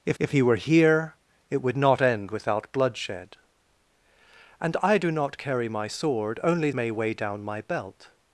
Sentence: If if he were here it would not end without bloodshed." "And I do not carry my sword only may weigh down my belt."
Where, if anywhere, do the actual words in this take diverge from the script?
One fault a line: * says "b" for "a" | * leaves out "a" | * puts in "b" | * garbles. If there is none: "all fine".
all fine